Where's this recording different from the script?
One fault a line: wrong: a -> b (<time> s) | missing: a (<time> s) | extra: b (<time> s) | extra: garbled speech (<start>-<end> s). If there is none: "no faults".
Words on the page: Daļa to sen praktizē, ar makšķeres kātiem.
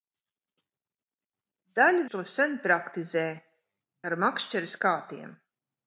no faults